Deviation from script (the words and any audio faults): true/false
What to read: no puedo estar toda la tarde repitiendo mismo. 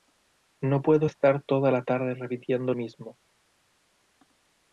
false